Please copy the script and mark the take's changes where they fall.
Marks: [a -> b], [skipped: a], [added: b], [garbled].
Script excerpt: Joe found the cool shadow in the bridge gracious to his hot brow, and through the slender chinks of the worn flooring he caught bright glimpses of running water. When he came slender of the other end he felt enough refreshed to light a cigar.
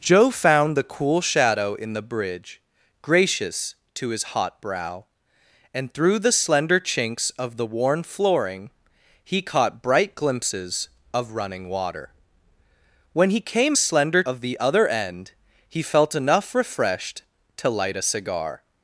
Joe found the cool shadow in the bridge gracious to his hot brow, and through the slender chinks of the worn flooring he caught bright glimpses of running water. When he came slender of the other end he felt enough refreshed to light a cigar.